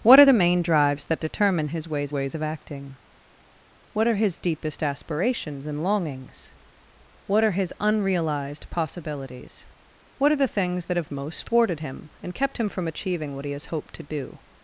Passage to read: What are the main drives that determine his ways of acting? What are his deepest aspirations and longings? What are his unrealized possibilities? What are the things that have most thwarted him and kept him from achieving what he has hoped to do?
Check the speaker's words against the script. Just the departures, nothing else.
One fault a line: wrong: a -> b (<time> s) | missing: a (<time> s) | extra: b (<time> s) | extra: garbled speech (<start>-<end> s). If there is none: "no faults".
extra: ways (2.1 s)